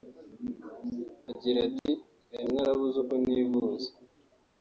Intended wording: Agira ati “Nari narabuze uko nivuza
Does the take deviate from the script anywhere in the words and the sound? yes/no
yes